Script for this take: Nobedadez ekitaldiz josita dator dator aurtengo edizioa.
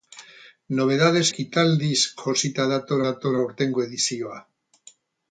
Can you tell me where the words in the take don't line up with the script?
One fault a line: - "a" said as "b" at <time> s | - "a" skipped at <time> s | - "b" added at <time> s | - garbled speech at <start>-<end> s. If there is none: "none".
none